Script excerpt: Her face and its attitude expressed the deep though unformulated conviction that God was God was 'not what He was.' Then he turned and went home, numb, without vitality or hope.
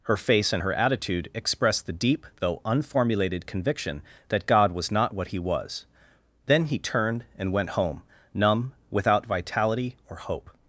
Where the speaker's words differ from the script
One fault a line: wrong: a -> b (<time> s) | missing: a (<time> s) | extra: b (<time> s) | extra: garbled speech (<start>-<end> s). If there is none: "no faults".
wrong: its -> her (0.6 s)
missing: God was (4.9 s)